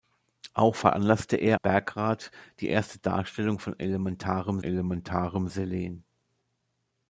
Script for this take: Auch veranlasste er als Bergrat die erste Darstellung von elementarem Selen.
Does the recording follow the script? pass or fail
fail